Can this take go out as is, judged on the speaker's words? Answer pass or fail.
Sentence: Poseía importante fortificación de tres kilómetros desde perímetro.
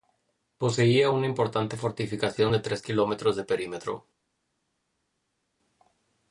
fail